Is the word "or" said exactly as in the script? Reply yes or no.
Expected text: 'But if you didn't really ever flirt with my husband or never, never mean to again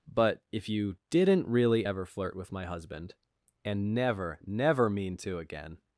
no